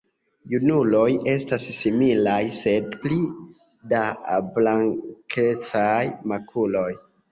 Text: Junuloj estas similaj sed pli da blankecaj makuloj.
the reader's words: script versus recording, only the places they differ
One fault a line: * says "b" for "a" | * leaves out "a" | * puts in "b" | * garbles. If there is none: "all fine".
all fine